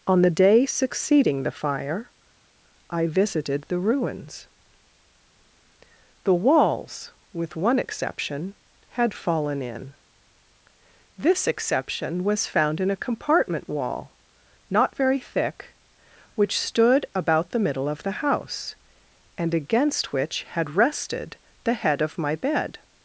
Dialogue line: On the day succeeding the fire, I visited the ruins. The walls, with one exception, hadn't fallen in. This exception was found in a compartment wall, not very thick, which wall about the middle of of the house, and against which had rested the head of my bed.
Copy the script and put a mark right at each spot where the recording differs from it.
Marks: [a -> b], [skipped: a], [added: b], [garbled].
On the day succeeding the fire, I visited the ruins. The walls, with one exception, [hadn't -> had] fallen in. This exception was found in a compartment wall, not very thick, which [wall -> stood] about the middle of [skipped: of] the house, and against which had rested the head of my bed.